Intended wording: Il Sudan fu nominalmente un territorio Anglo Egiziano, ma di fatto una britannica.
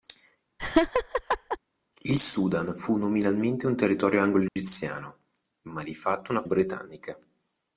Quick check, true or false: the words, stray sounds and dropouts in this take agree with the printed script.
false